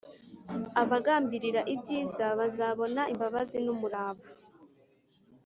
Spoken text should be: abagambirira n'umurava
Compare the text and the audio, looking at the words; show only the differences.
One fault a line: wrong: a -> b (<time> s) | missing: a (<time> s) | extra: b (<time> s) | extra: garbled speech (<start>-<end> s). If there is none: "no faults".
extra: ibyiza bazabona imbabazi (1.7 s)